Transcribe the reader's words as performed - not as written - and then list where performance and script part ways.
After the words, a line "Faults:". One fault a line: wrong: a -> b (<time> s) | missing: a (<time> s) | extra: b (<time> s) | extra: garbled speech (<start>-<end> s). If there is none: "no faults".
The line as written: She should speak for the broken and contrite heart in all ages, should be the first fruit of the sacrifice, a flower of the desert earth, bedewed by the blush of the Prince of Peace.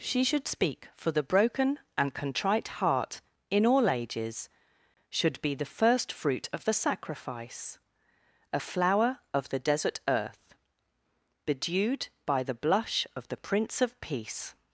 She should speak for the broken and contrite heart in all ages, should be the first fruit of the sacrifice, a flower of the desert earth, bedewed by the blush of the Prince of Peace.
Faults:
no faults